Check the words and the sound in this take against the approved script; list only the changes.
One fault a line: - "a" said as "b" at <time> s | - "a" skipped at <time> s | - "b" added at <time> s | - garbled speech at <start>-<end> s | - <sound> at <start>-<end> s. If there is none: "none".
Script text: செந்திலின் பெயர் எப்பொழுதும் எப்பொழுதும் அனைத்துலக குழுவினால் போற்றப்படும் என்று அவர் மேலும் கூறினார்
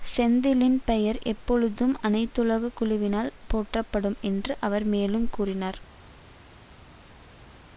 - "எப்பொழுதும்" skipped at 1.9 s